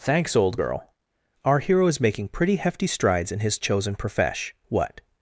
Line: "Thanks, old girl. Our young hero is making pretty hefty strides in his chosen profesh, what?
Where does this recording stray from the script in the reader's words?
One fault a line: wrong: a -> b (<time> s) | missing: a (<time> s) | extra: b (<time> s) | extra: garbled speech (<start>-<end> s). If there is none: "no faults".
missing: young (1.6 s)